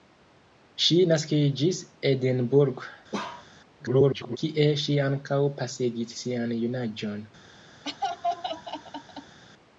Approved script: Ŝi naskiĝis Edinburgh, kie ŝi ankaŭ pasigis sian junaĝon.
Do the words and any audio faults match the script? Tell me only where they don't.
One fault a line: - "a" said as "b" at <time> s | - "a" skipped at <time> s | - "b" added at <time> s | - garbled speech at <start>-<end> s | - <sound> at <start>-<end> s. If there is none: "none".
- bark at 3.1-3.5 s
- garbled speech at 3.8-4.4 s
- laugh at 7.8-9.4 s